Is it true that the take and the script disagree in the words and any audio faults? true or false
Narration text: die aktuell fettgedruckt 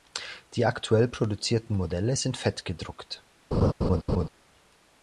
true